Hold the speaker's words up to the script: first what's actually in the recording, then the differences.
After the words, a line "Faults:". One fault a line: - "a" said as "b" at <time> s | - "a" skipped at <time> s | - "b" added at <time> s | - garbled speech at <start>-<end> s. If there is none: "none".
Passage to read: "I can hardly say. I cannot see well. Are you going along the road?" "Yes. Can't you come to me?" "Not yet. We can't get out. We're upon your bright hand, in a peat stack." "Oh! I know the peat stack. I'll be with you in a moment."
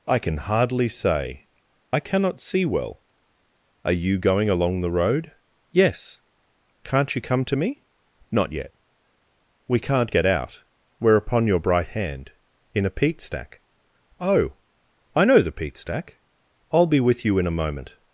"I can hardly say. I cannot see well. Are you going along the road?" "Yes. Can't you come to me?" "Not yet. We can't get out. We're upon your bright hand, in a peat stack." "Oh! I know the peat stack. I'll be with you in a moment."
Faults:
none